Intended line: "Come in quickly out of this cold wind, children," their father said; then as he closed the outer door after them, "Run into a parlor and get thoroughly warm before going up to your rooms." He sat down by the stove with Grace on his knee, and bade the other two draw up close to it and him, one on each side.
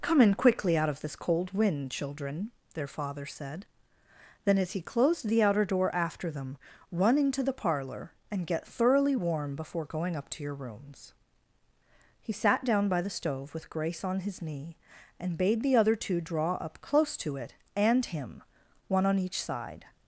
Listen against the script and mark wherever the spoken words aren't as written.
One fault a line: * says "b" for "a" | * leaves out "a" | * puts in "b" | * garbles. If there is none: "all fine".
* says "the" for "a"